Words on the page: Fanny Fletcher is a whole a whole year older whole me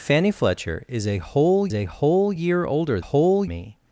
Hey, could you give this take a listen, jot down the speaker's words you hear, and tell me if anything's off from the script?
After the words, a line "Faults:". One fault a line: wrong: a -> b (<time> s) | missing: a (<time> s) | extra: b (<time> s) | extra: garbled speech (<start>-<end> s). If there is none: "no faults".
Fanny Fletcher is a whole a whole year older whole me
Faults:
no faults